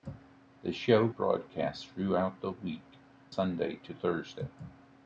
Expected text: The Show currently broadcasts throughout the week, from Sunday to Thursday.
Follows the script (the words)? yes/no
no